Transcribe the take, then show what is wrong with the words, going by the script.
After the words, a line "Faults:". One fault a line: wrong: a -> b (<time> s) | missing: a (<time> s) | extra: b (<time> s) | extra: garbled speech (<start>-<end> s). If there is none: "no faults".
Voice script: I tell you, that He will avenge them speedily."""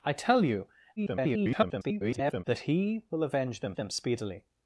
I tell you, [garbled] that He will avenge them them speedily."""
Faults:
extra: garbled speech (1.0-2.4 s)
extra: them (3.7 s)